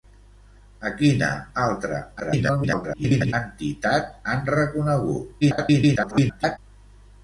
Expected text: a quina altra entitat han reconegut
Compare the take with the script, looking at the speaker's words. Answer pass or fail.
fail